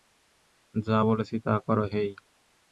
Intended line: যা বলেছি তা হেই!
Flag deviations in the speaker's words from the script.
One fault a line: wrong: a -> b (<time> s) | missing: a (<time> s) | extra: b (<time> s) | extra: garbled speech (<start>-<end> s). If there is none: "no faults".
extra: করো (1.6 s)